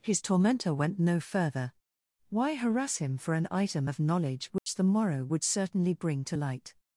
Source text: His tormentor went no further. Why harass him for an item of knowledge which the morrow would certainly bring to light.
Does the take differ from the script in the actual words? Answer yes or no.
no